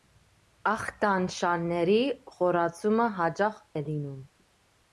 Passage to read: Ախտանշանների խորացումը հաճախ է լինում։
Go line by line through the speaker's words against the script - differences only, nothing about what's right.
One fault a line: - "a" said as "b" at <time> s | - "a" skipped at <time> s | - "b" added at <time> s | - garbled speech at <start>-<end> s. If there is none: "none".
none